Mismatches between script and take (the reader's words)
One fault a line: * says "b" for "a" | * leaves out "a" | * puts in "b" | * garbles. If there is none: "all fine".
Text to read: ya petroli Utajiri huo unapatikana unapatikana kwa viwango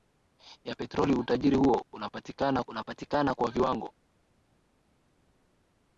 all fine